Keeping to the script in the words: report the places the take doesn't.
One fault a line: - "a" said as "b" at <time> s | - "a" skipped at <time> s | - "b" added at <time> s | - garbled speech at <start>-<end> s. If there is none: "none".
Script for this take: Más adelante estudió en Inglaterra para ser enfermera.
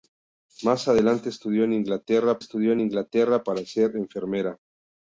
- "estudió en Inglaterra" added at 2.4 s